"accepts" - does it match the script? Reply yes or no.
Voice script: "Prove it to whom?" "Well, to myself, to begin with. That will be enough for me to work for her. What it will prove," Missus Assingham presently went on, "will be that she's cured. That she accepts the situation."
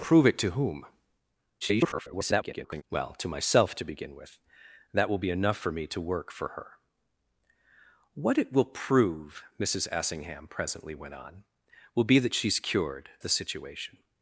no